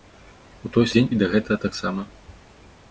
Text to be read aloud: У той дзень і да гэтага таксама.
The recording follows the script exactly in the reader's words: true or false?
true